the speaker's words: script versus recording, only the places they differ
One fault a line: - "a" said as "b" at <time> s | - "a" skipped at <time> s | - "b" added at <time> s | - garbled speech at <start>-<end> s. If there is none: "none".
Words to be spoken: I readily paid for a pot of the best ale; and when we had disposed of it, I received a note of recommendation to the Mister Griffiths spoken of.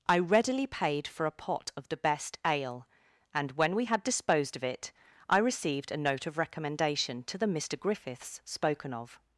none